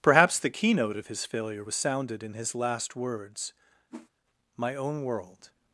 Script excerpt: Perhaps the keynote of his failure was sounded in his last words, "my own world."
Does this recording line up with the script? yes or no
yes